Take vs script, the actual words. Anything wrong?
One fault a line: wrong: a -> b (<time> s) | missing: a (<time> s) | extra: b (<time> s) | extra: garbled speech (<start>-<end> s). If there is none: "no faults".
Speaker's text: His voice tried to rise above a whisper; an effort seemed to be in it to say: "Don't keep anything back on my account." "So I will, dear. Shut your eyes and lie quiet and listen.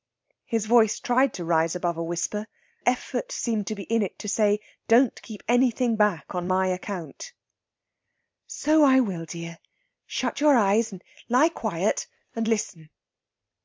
missing: an (2.5 s)